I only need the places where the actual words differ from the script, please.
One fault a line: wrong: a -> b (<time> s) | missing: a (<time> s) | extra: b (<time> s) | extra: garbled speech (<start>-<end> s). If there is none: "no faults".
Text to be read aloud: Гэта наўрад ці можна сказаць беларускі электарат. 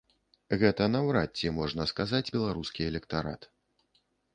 no faults